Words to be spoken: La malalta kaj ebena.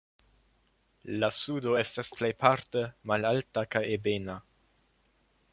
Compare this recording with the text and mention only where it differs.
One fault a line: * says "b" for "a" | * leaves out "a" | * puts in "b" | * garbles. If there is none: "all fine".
* puts in "sudo estas plejparte"